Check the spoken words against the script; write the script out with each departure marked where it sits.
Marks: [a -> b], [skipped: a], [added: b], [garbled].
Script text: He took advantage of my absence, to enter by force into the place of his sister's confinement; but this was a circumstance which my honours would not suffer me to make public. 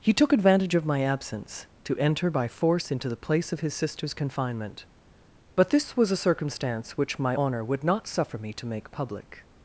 He took advantage of my absence, to enter by force into the place of his sister's confinement; but this was a circumstance which my [honours -> honour] would not suffer me to make public.